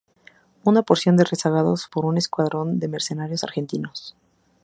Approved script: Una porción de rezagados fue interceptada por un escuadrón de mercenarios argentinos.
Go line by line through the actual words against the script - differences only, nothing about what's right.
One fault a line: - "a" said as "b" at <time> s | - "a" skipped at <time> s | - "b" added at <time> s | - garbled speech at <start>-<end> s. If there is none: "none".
- "fue interceptada" skipped at 1.9 s